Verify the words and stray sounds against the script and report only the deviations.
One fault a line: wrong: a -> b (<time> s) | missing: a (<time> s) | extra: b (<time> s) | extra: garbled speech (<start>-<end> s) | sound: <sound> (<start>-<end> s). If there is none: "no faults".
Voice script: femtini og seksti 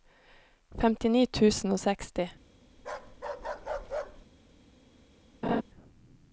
extra: tusen (1.4 s)
sound: bark (2.8-4.3 s)
sound: laugh (5.4-5.6 s)